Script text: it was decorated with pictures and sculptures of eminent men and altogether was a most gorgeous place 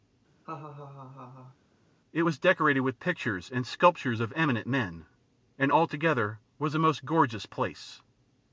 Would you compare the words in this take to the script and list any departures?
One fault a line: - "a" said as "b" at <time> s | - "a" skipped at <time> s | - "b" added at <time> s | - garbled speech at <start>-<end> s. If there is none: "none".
none